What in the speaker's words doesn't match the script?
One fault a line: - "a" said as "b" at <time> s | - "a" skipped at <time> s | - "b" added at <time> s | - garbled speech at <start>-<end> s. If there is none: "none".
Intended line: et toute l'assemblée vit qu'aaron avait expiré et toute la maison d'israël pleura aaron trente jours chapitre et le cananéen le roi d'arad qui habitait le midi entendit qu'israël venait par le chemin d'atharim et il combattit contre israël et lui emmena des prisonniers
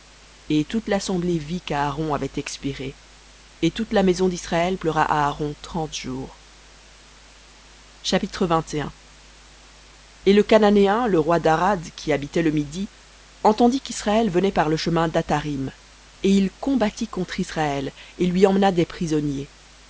none